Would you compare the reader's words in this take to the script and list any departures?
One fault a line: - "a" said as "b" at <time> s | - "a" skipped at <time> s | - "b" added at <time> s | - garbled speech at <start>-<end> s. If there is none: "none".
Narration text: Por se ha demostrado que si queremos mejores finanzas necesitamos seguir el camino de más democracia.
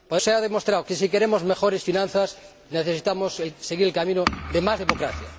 none